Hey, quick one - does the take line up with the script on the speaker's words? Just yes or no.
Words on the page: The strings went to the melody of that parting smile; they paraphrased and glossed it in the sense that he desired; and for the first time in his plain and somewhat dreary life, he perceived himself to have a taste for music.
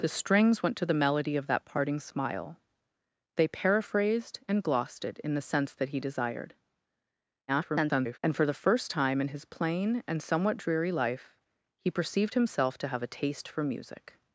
no